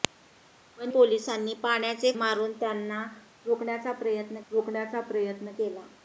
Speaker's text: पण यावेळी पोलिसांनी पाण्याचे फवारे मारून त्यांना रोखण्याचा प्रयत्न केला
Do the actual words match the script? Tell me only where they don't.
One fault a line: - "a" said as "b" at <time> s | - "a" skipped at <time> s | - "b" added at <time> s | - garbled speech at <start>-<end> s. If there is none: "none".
- "यावेळी" skipped at 0.9 s
- "फवारे" skipped at 2.1 s
- "रोखण्याचा प्रयत्न" added at 4.5 s